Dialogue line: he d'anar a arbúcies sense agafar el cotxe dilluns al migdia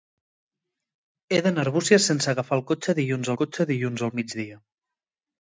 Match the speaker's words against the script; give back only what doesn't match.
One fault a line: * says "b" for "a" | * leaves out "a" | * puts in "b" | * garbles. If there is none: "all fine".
* puts in "cotxe dilluns"